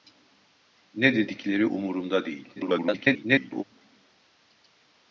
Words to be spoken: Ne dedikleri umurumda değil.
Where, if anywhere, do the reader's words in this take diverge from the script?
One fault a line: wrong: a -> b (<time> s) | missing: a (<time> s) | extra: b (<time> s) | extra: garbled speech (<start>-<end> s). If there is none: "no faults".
extra: garbled speech (2.6-3.6 s)